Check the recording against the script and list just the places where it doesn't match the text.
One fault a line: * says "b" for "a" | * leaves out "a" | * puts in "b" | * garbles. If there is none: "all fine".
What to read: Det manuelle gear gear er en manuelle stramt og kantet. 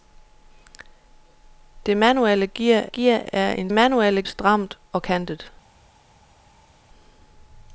all fine